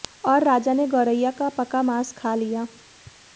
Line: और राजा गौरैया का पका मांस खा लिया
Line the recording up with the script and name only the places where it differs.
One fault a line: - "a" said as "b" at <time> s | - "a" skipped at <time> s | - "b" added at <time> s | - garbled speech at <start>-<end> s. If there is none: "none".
- "ने" added at 0.7 s